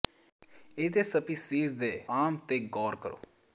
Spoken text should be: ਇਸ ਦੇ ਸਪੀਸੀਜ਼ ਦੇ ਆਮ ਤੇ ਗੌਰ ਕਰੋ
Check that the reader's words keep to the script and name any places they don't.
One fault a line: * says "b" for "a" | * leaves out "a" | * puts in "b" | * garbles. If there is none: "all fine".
all fine